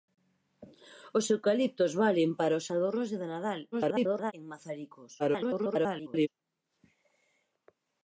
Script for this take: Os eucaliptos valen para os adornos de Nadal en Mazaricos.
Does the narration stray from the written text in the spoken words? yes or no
yes